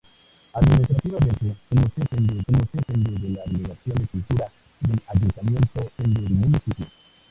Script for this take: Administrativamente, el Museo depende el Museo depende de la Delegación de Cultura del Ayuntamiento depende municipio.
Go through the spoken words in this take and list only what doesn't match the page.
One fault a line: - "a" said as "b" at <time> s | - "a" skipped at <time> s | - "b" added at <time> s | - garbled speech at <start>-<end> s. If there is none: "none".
none